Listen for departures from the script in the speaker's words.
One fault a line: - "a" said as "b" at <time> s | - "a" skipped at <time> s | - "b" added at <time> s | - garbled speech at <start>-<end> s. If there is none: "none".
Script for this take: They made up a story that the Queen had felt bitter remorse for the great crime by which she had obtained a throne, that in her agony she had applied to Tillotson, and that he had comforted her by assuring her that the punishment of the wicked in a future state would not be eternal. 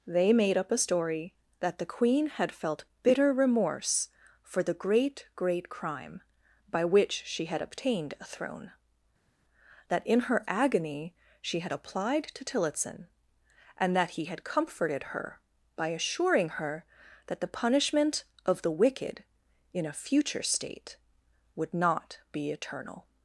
- "great" added at 5.3 s